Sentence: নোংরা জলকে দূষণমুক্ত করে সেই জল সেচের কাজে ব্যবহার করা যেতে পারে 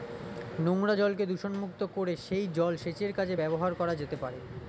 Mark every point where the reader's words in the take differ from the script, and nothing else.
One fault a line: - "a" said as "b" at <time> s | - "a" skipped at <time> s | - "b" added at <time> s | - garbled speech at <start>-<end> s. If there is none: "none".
none